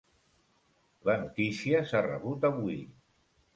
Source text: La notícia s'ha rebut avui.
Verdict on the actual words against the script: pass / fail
pass